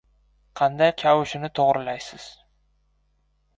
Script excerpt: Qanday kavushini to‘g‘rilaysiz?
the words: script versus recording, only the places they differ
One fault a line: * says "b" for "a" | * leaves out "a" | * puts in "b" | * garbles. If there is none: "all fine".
all fine